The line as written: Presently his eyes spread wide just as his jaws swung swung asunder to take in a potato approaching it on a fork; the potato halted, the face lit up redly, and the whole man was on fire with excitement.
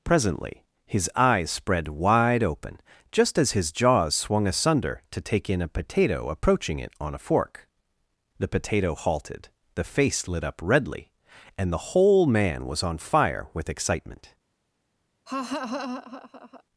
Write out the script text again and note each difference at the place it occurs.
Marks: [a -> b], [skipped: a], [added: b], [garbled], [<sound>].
Presently his eyes spread wide [added: open] just as his jaws swung [skipped: swung] asunder to take in a potato approaching it on a fork; the potato halted, the face lit up redly, and the whole man was on fire with excitement. [laugh]